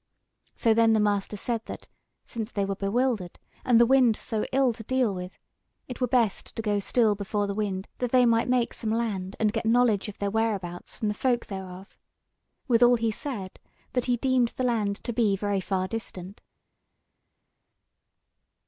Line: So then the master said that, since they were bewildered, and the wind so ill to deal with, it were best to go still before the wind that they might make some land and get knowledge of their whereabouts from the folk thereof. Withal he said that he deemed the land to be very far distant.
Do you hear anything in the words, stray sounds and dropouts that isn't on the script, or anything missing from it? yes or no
no